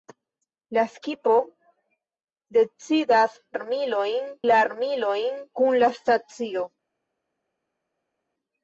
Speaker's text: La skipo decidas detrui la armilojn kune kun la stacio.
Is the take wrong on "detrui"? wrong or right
wrong